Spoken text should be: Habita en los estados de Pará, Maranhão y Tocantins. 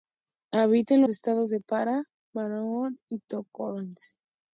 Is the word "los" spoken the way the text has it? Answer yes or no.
no